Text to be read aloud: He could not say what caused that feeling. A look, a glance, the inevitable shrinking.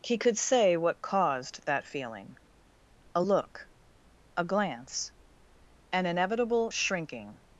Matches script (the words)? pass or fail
fail